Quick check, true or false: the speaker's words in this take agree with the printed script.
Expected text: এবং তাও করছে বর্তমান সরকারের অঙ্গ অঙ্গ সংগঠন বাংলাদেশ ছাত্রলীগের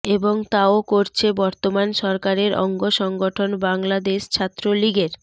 false